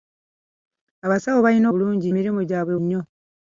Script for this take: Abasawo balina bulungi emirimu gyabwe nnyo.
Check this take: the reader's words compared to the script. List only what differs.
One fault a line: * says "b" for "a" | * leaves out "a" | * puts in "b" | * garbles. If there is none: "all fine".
all fine